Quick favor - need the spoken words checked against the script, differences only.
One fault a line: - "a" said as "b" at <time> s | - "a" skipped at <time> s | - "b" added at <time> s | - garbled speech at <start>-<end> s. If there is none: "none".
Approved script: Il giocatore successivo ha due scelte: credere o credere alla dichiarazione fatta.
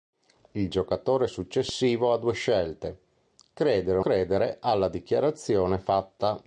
none